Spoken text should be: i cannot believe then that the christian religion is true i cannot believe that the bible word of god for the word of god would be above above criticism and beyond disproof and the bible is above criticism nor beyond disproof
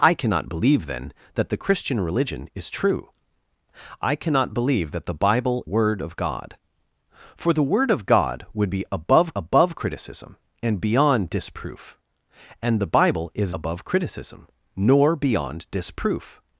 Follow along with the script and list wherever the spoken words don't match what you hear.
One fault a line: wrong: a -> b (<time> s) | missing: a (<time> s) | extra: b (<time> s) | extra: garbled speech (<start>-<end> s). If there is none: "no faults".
no faults